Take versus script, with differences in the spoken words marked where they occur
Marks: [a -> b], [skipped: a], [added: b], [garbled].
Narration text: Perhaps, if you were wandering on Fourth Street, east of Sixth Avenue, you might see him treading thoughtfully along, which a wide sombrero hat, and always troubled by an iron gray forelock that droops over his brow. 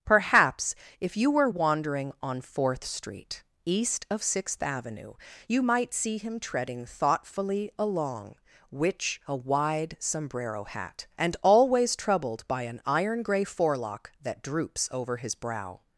Perhaps, if you were wandering on Fourth Street, east of Sixth Avenue, you might see him treading thoughtfully along, which a wide sombrero hat, and always troubled by an iron gray forelock that droops over his brow.